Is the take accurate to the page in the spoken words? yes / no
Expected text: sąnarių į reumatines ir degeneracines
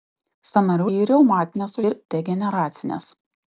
yes